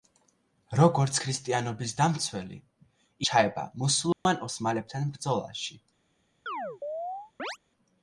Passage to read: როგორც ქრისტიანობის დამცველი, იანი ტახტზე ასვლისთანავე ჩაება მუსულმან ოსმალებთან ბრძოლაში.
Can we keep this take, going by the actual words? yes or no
no